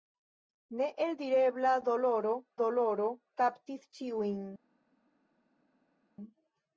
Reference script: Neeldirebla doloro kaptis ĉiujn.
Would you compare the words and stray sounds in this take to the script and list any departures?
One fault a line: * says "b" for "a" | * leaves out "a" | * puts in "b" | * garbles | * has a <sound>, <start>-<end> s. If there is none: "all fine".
* puts in "doloro"